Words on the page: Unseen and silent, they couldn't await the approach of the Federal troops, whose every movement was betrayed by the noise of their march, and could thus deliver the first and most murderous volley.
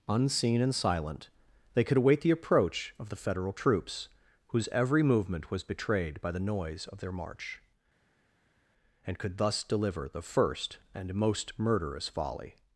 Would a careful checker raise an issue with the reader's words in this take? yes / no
yes